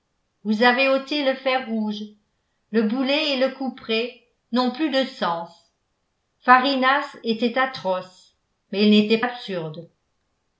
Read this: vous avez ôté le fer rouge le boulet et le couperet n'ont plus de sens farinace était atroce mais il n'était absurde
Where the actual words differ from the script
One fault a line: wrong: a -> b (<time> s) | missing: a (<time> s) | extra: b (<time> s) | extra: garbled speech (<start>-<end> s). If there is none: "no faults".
no faults